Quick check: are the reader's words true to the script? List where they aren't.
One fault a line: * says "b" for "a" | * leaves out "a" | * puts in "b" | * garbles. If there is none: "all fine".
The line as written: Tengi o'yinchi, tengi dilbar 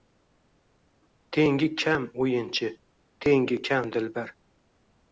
* puts in "kam"
* puts in "kam"